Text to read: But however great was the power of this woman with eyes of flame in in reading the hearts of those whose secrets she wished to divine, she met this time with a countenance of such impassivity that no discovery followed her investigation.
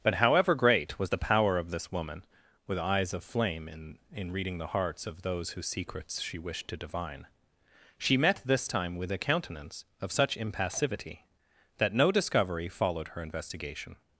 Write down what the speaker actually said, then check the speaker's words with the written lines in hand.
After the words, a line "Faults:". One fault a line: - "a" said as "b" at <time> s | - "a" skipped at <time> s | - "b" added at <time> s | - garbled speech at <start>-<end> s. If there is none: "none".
But however great was the power of this woman with eyes of flame in in reading the hearts of those whose secrets she wished to divine, she met this time with a countenance of such impassivity that no discovery followed her investigation.
Faults:
none